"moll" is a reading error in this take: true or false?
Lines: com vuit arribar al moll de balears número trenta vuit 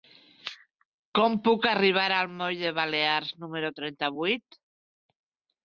false